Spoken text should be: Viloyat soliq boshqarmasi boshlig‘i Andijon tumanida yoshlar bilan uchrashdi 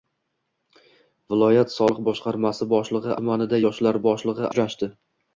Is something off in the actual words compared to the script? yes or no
yes